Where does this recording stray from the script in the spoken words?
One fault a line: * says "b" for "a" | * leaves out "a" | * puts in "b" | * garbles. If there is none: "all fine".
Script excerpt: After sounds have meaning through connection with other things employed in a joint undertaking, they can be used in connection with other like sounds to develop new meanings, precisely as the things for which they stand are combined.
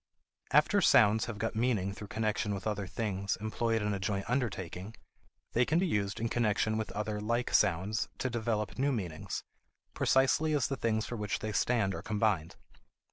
* puts in "got"